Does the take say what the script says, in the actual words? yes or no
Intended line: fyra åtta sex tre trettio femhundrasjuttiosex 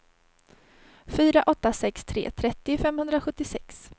yes